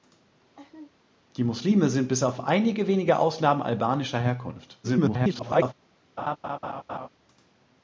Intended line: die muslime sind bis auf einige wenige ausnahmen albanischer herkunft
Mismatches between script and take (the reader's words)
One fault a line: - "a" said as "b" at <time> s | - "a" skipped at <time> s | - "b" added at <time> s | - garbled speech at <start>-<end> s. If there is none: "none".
- garbled speech at 4.8-5.7 s